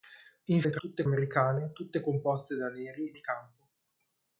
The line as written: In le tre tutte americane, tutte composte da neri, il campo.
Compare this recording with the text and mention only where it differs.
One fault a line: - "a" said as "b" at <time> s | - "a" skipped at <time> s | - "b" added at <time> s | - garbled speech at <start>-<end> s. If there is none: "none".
none